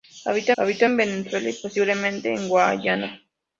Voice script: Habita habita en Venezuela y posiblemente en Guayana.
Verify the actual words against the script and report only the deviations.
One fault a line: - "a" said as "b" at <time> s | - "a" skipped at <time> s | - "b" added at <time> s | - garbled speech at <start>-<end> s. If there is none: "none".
none